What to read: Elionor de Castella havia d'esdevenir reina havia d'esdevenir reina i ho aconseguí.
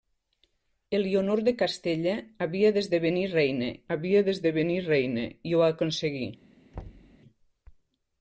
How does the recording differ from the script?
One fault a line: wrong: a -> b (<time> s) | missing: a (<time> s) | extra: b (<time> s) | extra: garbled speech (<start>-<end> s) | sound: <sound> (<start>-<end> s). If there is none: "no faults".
sound: thud (6.7-7.2 s)